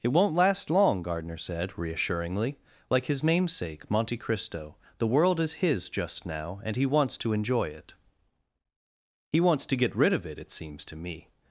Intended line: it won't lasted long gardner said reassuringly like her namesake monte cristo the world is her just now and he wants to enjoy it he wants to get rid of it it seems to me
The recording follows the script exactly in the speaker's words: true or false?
false